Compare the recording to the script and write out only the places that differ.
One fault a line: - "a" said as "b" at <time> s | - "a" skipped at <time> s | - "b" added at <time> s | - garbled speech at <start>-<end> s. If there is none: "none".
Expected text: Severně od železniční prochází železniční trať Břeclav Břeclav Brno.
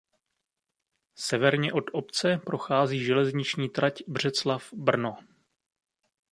- "železniční" said as "obce" at 1.9 s
- "Břeclav" skipped at 4.6 s